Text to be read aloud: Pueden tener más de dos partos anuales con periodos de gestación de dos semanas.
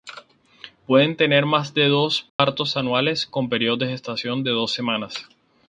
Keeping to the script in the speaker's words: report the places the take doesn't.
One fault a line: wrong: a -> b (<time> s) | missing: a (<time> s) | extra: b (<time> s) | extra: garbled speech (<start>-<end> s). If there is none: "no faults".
no faults